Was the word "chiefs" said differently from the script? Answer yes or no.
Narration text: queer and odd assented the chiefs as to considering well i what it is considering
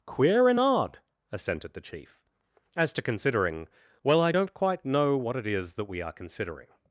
yes